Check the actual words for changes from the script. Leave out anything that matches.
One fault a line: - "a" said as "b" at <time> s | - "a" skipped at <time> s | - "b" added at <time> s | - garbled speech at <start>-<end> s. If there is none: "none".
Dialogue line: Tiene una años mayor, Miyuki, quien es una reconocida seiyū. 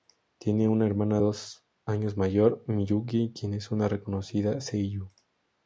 - "hermana dos" added at 0.9 s